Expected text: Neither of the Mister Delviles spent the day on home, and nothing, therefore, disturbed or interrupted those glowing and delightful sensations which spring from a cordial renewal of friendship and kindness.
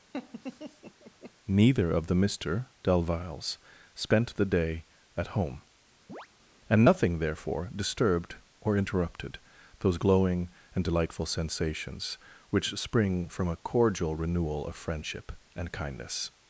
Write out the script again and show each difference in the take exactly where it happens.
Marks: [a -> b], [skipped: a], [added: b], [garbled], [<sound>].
[laugh] Neither of the Mister Delviles spent the day [on -> at] home, [chirp] and nothing, therefore, disturbed or interrupted those glowing and delightful sensations which spring from a cordial renewal of friendship and kindness.